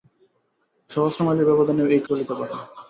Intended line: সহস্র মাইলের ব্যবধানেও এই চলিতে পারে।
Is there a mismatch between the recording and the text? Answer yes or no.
no